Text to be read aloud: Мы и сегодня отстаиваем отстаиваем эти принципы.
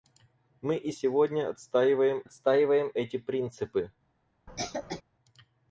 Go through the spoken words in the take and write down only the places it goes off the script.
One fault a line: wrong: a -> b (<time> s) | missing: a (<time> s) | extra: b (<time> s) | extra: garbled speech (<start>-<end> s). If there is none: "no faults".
no faults